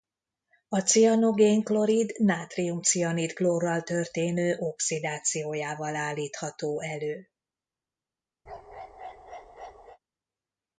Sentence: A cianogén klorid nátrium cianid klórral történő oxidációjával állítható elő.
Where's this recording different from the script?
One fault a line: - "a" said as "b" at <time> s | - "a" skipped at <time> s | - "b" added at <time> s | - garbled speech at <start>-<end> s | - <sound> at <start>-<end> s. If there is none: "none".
- bark at 8.5-10.0 s